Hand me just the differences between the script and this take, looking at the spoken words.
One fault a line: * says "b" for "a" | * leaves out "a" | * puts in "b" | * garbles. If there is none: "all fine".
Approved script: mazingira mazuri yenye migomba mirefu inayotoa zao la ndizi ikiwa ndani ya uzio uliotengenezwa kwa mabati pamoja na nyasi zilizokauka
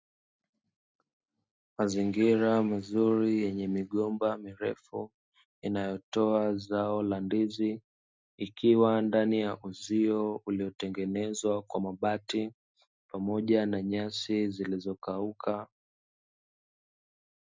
all fine